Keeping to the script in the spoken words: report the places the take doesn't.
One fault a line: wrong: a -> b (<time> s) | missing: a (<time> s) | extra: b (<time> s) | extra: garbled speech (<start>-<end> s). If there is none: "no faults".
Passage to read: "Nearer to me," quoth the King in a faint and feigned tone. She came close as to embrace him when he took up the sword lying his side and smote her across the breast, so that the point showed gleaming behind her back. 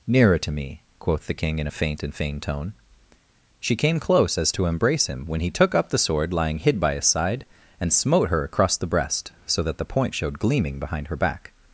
extra: hid by (6.6 s)